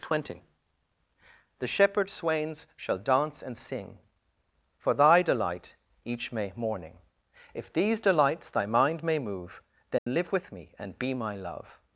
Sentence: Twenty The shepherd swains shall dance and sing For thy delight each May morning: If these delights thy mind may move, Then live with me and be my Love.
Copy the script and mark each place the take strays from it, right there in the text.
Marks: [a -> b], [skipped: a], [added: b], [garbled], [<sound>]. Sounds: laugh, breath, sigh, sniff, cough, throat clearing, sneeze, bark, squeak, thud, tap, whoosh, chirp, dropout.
Twenty The shepherd swains shall dance and sing For thy delight each May morning: If these delights thy mind may move, Then [dropout] live with me and be my Love.